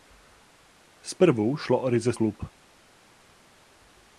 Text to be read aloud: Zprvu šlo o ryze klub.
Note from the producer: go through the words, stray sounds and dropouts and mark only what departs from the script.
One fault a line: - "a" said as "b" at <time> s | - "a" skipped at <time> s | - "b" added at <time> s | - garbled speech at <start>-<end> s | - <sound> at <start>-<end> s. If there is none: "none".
none